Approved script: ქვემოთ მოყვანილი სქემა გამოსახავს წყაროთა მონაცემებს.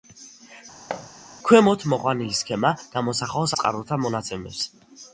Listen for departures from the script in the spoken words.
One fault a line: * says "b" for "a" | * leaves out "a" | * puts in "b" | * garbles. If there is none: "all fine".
all fine